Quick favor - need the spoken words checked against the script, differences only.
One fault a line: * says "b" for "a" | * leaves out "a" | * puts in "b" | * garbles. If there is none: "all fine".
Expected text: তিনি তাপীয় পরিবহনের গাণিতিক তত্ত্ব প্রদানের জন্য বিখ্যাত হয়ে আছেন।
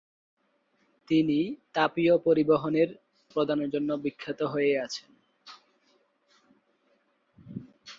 * leaves out "গাণিতিক তত্ত্ব"